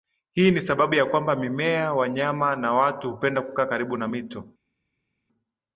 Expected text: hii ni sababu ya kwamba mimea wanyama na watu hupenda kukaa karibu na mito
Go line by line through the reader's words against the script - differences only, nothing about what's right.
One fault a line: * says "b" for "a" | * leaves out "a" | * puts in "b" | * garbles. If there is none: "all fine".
all fine